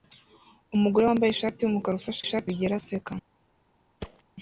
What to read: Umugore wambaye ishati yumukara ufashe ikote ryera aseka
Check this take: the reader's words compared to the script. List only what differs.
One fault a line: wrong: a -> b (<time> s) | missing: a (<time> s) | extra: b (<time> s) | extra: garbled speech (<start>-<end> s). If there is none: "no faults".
wrong: ikote -> ishati (2.2 s)